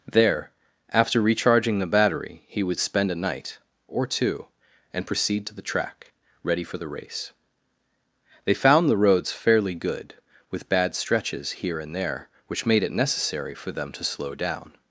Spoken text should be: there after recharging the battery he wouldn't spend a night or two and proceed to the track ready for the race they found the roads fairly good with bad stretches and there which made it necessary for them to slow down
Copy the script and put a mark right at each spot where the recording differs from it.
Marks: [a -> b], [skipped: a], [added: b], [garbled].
there after recharging the battery he [wouldn't -> would] spend a night or two and proceed to the track ready for the race they found the roads fairly good with bad stretches [added: here] and there which made it necessary for them to slow down